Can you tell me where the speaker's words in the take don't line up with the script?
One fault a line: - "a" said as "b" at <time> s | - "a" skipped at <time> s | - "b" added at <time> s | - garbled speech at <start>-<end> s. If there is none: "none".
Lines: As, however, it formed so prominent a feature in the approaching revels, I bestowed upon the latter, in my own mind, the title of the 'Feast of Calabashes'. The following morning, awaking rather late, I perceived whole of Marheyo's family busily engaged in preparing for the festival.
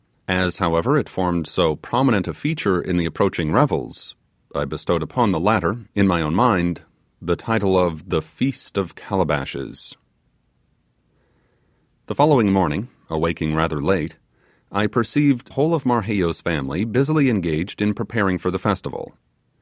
none